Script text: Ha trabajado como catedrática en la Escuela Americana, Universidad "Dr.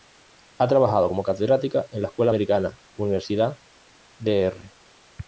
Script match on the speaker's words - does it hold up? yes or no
yes